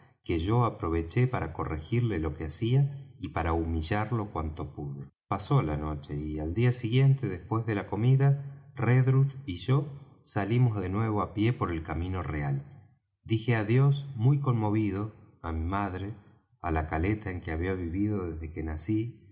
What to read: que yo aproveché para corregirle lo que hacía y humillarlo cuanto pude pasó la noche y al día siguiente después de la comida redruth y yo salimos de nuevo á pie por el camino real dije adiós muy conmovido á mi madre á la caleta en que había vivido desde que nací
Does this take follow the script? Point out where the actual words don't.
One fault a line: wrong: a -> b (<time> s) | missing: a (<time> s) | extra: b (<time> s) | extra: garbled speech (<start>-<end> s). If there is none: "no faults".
extra: para (3.3 s)